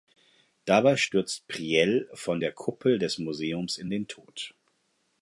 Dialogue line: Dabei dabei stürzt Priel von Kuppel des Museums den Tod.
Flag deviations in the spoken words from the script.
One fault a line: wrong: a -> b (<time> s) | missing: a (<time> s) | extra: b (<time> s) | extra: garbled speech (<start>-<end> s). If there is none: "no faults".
missing: dabei (1.0 s)
extra: der (2.4 s)
extra: in (3.8 s)